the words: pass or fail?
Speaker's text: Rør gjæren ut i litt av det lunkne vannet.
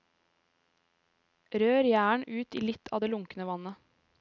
pass